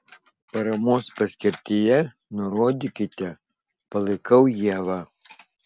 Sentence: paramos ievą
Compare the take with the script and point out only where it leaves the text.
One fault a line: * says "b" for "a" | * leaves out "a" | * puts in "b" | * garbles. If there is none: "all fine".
* puts in "paskirtyje nurodykite palaikau"